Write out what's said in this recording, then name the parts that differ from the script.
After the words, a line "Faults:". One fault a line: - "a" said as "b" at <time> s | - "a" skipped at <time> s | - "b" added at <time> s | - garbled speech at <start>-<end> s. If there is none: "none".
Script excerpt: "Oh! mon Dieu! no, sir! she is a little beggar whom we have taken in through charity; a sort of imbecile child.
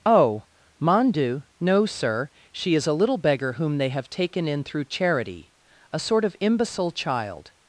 "Oh! mon Dieu! no, sir! she is a little beggar whom they have taken in through charity; a sort of imbecile child.
Faults:
- "we" said as "they" at 3.8 s